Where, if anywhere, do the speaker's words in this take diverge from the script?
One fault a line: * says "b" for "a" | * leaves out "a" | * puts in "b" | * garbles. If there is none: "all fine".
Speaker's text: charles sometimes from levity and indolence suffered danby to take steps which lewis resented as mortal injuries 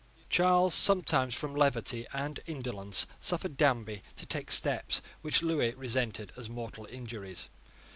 all fine